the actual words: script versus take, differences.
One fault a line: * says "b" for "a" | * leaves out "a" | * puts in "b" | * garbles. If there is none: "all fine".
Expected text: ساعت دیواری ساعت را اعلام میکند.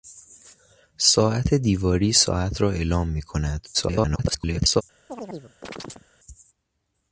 * garbles